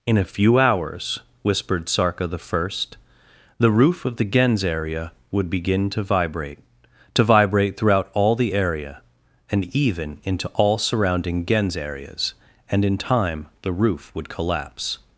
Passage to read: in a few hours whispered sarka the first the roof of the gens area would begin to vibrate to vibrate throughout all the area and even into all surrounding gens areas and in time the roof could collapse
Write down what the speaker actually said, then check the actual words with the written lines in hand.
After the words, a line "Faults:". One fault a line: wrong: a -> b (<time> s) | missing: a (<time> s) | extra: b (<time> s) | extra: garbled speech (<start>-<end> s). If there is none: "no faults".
in a few hours whispered sarka the first the roof of the gens area would begin to vibrate to vibrate throughout all the area and even into all surrounding gens areas and in time the roof would collapse
Faults:
wrong: could -> would (14.1 s)